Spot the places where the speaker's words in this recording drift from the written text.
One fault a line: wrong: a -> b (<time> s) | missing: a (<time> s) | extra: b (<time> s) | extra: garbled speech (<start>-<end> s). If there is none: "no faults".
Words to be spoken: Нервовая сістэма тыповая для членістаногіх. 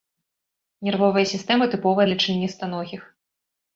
no faults